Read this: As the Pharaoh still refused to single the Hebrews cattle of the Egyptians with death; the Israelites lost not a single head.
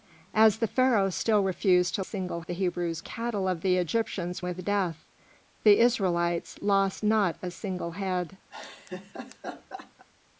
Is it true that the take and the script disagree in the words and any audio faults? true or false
true